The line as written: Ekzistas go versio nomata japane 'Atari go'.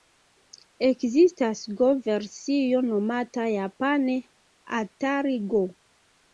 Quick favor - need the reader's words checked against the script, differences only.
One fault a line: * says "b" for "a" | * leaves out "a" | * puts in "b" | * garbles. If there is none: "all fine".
all fine